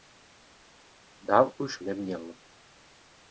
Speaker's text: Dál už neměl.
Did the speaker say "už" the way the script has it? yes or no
yes